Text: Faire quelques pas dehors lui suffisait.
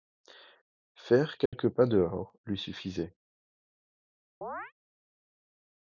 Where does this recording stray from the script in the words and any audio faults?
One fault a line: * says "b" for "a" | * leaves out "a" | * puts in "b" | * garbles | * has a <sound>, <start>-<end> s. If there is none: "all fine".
* has a dropout, 1.5-1.5 s
* has a chirp, 4.4-4.7 s